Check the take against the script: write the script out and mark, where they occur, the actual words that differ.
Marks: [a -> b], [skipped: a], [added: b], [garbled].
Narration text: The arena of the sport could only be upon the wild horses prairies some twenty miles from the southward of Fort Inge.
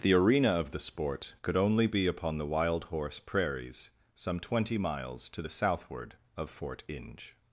The arena of the sport could only be upon the wild [horses -> horse] prairies some twenty miles [from -> to] the southward of Fort Inge.